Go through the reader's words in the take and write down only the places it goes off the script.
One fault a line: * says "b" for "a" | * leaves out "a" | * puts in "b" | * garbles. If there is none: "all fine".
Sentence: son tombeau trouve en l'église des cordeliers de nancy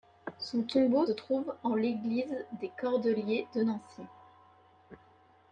all fine